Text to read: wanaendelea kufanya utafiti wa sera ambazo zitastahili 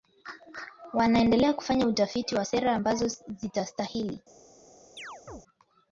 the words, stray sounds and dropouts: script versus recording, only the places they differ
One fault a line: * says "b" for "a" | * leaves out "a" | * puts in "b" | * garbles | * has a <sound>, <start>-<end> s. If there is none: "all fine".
* has a chirp, 5.0-5.4 s